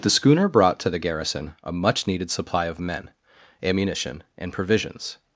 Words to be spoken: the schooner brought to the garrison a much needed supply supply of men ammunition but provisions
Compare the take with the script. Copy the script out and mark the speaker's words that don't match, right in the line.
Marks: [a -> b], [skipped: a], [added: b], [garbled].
the schooner brought to the garrison a much needed supply [skipped: supply] of men ammunition [but -> and] provisions